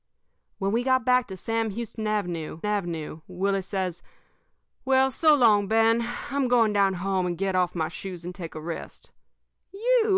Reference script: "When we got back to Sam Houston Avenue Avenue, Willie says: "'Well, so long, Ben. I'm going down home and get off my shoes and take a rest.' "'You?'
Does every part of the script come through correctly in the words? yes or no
yes